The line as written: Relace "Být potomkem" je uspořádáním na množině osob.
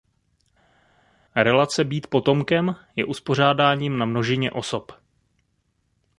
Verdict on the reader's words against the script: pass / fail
pass